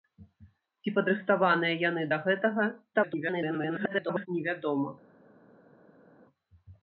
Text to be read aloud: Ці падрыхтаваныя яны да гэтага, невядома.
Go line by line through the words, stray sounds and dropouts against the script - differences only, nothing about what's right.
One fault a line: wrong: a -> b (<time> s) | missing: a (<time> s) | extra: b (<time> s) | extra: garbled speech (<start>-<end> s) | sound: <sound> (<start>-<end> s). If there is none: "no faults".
extra: garbled speech (2.9-4.3 s)